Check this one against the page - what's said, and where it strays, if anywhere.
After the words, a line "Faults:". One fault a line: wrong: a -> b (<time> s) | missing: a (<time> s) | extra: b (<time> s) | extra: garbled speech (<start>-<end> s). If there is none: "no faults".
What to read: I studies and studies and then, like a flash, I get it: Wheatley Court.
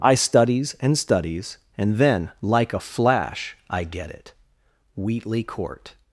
I studies and studies and then, like a flash, I get it: Wheatley Court.
Faults:
no faults